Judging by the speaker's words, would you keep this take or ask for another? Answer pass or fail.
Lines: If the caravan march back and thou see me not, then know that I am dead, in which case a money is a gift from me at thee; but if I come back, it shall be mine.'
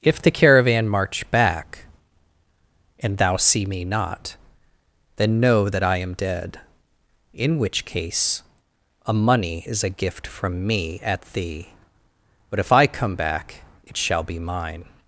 pass